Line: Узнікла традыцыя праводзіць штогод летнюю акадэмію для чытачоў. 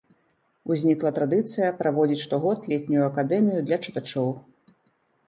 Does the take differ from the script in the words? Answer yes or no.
no